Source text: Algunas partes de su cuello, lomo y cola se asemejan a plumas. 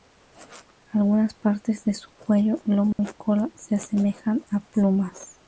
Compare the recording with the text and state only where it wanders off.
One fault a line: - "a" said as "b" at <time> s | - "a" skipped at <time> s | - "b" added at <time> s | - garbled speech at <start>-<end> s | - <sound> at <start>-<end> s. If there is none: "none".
- dropout at 2.9-3.0 s